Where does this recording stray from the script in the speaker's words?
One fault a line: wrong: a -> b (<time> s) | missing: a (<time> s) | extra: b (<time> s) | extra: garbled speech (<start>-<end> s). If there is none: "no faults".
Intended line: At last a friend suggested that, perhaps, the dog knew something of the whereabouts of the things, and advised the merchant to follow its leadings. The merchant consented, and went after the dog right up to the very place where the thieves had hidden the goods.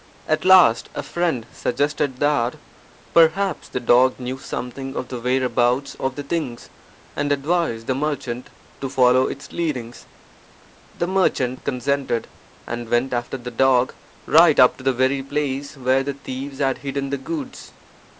no faults